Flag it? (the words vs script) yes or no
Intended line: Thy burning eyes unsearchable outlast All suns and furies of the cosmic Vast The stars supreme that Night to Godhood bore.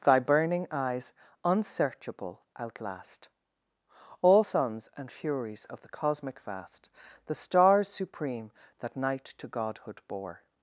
no